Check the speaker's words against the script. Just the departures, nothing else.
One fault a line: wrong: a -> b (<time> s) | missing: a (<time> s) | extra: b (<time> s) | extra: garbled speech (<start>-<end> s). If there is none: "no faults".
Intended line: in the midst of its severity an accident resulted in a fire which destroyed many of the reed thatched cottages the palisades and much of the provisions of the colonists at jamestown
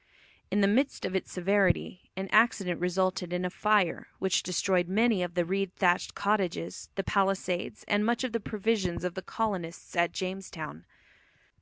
no faults